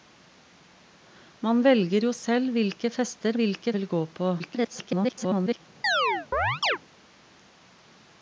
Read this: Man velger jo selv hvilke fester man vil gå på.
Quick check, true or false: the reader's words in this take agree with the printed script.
false